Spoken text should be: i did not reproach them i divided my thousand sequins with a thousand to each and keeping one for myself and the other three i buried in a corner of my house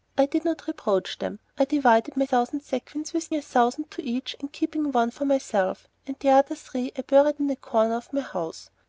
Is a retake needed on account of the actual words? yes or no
no